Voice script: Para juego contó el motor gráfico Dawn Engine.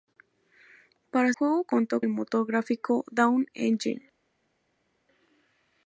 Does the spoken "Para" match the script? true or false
true